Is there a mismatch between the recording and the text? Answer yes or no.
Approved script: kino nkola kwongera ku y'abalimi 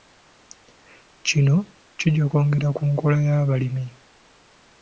yes